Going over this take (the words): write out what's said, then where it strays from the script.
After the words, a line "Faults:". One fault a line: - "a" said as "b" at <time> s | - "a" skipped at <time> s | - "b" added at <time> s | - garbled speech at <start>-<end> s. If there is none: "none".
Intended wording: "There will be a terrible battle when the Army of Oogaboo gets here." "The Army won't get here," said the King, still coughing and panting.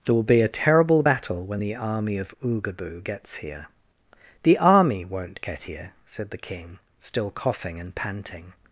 "There will be a terrible battle when the Army of Oogaboo gets here." "The Army won't get here," said the King, still coughing and panting.
Faults:
none